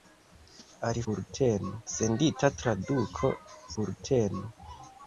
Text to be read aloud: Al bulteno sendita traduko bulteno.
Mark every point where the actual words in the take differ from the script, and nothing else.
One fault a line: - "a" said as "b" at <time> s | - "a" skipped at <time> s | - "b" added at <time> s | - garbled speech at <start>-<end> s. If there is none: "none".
none